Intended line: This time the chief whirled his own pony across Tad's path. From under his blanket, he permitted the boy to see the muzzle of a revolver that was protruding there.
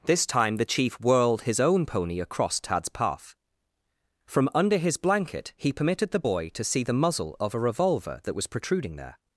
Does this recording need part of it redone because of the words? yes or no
no